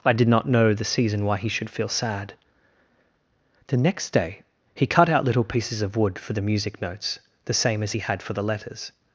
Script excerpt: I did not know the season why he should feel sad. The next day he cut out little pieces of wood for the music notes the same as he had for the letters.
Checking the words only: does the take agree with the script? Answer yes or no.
yes